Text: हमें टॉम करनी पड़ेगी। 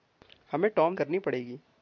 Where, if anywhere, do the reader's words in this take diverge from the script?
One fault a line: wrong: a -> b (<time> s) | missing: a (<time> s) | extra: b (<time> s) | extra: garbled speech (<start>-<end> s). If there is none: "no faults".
no faults